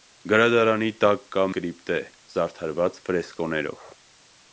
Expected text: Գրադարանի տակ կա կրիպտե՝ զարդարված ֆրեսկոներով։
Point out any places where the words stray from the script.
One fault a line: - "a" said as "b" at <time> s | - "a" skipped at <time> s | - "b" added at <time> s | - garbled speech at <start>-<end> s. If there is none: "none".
none